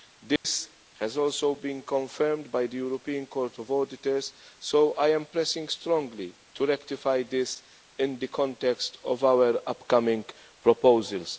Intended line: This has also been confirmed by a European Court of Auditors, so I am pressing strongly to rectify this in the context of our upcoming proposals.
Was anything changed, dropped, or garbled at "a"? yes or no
yes